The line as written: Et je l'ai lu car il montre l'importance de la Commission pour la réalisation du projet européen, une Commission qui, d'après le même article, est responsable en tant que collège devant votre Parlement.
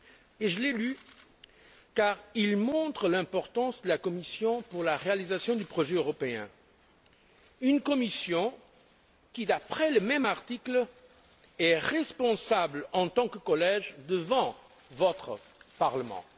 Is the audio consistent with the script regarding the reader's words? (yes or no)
yes